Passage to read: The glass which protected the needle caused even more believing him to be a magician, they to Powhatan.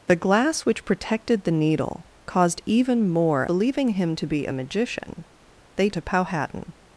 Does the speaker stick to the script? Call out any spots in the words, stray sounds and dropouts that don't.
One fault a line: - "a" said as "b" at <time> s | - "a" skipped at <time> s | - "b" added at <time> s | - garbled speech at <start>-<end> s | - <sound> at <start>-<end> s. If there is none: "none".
none